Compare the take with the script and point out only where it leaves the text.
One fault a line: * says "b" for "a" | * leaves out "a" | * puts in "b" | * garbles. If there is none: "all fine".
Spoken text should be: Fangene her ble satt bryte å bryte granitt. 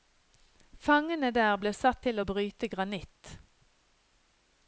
* says "der" for "her"
* says "til" for "bryte"